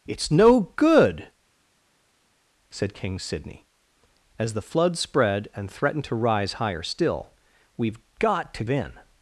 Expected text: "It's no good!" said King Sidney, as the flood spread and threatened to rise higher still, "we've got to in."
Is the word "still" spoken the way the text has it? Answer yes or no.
yes